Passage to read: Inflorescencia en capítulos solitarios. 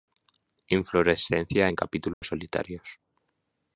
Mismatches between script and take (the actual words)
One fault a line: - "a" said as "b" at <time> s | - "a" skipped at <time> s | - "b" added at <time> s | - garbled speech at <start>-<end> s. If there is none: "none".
none